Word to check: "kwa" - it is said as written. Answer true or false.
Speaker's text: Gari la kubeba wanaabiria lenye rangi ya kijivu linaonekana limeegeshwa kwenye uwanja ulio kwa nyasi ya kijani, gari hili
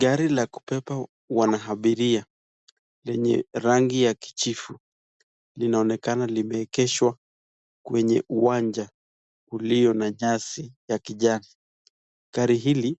false